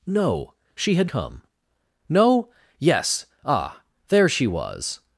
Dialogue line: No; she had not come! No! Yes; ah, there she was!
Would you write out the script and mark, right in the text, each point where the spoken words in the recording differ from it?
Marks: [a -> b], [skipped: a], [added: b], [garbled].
No; she had [skipped: not] come! No! Yes; ah, there she was!